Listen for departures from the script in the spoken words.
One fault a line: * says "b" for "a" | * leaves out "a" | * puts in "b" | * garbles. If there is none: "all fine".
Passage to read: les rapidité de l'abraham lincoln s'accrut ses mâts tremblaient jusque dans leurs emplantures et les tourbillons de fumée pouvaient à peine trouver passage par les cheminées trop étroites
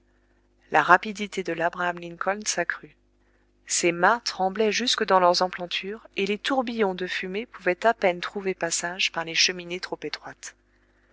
* says "la" for "les"